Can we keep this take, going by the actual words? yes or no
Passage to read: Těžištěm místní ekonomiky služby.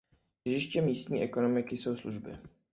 no